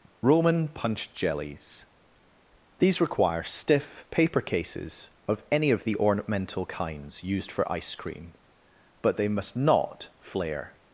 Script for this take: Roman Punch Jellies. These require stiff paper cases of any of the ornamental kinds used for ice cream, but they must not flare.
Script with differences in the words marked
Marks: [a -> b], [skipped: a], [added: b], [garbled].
Roman Punch Jellies. These require stiff paper cases of any of the ornamental kinds used for ice cream, but they must not flare.